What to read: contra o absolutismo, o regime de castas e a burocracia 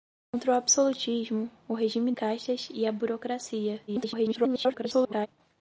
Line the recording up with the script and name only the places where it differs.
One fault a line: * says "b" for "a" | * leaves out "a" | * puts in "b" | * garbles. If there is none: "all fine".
* leaves out "de"
* garbles